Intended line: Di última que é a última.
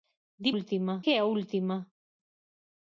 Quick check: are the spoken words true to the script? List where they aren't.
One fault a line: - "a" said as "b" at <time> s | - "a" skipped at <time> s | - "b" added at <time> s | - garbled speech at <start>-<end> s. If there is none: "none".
none